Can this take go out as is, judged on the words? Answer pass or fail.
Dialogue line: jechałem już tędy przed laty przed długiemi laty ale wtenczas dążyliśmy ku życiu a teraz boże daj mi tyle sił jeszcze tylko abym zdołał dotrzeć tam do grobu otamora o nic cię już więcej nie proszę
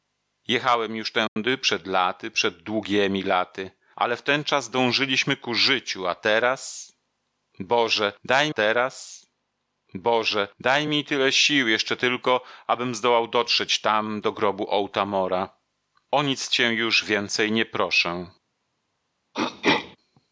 fail